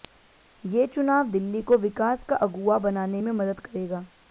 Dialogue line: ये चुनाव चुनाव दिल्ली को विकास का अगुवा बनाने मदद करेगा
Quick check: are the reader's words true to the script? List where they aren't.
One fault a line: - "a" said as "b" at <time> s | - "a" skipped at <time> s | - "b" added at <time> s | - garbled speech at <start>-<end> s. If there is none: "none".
- "चुनाव" skipped at 1.3 s
- "में" added at 3.2 s